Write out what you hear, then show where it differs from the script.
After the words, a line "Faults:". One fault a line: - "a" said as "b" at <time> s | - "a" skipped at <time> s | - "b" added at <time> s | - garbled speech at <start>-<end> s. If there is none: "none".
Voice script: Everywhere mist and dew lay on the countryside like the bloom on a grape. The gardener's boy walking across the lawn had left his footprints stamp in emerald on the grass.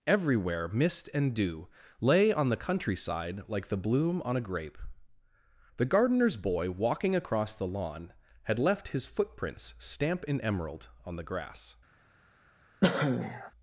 Everywhere mist and dew lay on the countryside like the bloom on a grape. The gardener's boy walking across the lawn had left his footprints stamp in emerald on the grass.
Faults:
none